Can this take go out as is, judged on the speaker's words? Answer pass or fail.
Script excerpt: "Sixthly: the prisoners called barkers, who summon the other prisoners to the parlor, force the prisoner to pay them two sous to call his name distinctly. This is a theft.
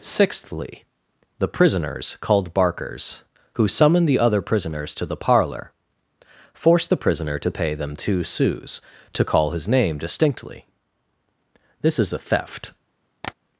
pass